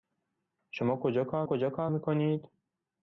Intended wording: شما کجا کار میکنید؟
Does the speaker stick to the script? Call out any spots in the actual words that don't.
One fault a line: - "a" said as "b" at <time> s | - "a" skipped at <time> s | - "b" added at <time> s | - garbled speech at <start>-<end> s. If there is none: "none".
- "کجا کار" added at 1.4 s